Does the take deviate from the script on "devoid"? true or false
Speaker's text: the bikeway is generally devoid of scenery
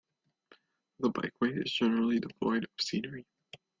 false